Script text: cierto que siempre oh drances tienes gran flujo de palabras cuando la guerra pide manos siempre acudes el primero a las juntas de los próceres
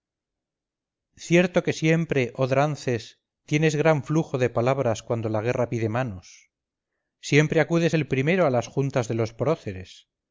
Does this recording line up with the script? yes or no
yes